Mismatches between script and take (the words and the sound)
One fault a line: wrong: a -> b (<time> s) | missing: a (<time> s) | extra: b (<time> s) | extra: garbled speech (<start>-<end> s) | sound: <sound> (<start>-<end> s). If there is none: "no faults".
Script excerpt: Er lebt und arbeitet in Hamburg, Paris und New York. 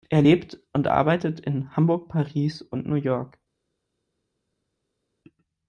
no faults